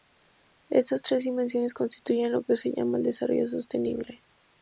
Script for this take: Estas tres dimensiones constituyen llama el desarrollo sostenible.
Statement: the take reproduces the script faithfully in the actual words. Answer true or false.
false